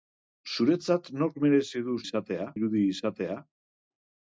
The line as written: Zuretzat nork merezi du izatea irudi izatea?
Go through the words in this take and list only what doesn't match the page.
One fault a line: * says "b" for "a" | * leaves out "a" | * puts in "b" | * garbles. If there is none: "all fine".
all fine